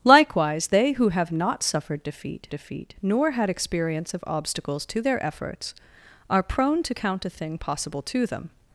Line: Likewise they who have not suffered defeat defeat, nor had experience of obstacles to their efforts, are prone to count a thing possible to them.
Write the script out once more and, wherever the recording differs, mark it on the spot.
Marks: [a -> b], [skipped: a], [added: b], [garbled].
Likewise they who have not suffered defeat defeat, nor had experience of obstacles to their efforts, are prone to count a thing possible to them.